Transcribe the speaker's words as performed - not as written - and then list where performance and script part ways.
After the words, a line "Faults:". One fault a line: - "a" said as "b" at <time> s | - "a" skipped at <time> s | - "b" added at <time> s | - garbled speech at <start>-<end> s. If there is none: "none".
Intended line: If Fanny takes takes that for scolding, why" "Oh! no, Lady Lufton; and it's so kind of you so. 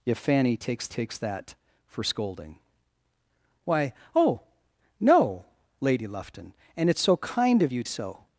If Fanny takes takes that for scolding, why" "Oh! no, Lady Lufton; and it's so kind of you so.
Faults:
none